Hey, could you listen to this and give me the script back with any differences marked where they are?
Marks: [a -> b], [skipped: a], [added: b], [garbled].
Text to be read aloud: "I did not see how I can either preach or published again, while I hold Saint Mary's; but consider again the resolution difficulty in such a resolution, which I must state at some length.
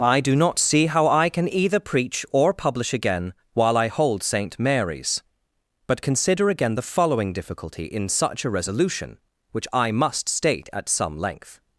"I [did -> do] not see how I can either preach or [published -> publish] again, while I hold Saint Mary's; but consider again the [resolution -> following] difficulty in such a resolution, which I must state at some length.